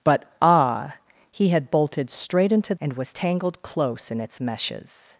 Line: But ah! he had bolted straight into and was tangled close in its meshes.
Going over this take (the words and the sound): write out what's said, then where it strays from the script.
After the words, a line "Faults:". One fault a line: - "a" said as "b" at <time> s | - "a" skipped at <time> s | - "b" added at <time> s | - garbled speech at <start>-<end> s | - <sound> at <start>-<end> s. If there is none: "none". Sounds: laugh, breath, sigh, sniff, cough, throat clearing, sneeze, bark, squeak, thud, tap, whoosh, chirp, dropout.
But ah! he had bolted straight into and was tangled close in its meshes.
Faults:
none